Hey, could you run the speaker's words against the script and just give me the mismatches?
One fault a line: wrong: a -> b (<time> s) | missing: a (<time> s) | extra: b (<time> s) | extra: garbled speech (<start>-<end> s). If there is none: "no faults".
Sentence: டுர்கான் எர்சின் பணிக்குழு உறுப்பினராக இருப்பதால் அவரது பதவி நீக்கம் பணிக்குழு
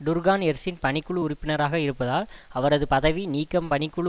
no faults